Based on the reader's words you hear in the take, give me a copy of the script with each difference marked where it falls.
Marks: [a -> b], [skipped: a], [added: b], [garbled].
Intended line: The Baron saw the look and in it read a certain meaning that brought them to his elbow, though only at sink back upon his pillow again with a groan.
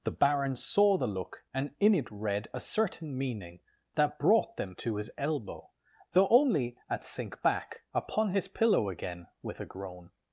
The Baron saw the look and in it read a certain meaning that brought them to his elbow, though only at sink back upon his pillow again with a groan.